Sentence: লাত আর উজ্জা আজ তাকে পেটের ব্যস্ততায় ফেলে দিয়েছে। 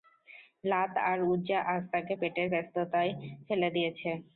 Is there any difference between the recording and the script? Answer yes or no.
no